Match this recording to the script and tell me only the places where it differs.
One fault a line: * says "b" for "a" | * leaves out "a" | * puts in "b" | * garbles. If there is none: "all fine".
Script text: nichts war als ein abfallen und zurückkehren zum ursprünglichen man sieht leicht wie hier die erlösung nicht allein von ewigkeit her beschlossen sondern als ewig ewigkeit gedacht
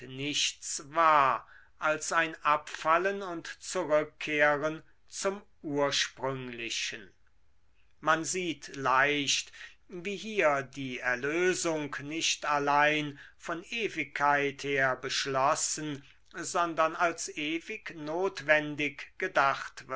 * says "notwendig" for "ewigkeit"